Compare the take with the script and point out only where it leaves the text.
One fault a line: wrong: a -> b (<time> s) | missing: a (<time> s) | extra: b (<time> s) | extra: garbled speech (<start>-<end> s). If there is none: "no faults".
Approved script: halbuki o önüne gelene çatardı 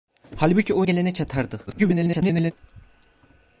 missing: önüne (0.8 s)
extra: garbled speech (1.7-2.5 s)